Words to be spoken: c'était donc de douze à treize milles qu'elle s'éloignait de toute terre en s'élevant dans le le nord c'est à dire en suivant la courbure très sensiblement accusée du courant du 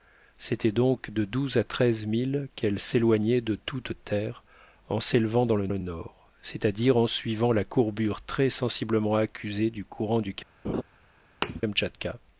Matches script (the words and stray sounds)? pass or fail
fail